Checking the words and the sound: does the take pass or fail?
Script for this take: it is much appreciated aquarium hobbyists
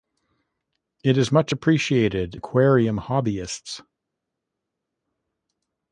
pass